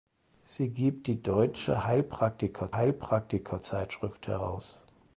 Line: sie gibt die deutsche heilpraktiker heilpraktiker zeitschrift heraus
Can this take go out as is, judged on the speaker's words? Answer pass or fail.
pass